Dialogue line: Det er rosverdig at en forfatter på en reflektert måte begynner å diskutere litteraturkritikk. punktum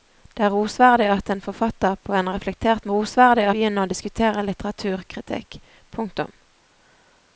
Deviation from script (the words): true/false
true